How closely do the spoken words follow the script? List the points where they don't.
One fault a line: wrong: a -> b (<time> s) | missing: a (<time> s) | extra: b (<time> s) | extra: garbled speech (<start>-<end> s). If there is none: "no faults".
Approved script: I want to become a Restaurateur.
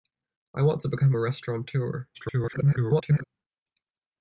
extra: garbled speech (2.1-3.2 s)